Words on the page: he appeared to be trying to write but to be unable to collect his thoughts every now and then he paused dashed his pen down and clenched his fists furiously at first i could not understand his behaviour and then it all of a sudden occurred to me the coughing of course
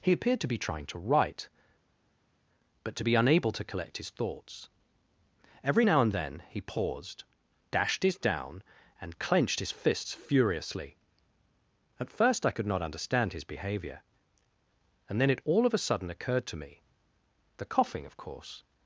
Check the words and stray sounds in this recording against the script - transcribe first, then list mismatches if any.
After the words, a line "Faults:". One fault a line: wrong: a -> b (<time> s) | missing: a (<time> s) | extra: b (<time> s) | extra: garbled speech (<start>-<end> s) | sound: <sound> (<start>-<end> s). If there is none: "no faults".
he appeared to be trying to write but to be unable to collect his thoughts every now and then he paused dashed his down and clenched his fists furiously at first i could not understand his behaviour and then it all of a sudden occurred to me the coughing of course
Faults:
missing: pen (8.2 s)